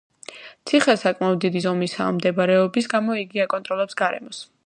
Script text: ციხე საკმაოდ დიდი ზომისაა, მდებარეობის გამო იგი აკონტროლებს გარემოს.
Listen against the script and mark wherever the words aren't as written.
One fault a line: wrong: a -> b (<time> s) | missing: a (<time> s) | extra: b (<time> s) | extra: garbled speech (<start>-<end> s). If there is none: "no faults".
no faults